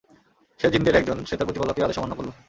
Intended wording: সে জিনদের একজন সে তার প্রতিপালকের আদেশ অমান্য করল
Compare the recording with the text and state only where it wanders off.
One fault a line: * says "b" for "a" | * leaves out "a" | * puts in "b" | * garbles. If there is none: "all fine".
all fine